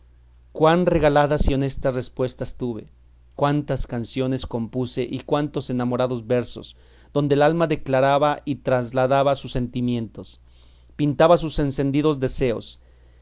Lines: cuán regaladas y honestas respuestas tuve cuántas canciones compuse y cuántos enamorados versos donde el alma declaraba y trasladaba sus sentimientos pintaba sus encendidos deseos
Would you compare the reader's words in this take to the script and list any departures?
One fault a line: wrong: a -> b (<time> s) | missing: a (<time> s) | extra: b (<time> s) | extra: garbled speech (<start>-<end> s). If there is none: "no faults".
no faults